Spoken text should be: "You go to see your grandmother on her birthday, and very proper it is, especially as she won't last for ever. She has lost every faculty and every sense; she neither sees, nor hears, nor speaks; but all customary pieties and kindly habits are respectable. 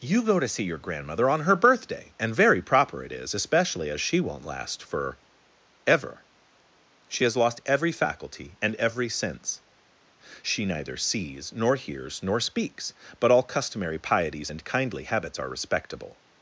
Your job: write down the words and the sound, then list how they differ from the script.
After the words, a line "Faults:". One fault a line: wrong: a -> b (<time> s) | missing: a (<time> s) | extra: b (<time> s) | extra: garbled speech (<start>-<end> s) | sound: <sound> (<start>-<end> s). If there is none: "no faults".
"You go to see your grandmother on her birthday, and very proper it is, especially as she won't last for ever. She has lost every faculty and every sense; she neither sees, nor hears, nor speaks; but all customary pieties and kindly habits are respectable.
Faults:
no faults